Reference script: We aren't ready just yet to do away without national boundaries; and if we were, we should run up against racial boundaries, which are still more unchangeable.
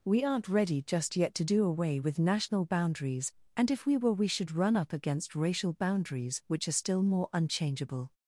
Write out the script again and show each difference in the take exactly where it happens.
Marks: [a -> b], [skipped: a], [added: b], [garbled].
We aren't ready just yet to do away [without -> with] national boundaries; and if we were, we should run up against racial boundaries, which are still more unchangeable.